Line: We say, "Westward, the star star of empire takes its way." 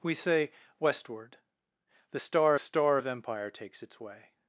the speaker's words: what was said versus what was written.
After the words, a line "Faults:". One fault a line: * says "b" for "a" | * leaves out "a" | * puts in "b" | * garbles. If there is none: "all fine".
We say, "Westward, the star star of empire takes its way."
Faults:
all fine